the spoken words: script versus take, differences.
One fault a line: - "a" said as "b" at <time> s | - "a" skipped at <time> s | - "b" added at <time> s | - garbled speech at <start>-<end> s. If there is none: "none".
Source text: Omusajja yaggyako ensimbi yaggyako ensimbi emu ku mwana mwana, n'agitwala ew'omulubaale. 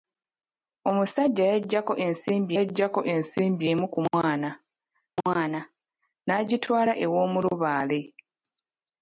none